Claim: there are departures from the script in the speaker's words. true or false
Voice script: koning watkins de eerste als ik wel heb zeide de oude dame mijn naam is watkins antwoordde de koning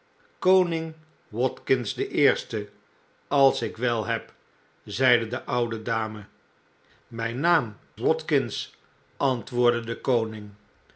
true